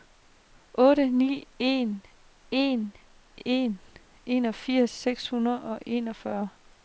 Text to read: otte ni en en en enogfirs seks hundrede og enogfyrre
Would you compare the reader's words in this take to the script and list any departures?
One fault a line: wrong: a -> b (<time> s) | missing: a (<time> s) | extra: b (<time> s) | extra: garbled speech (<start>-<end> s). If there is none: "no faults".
no faults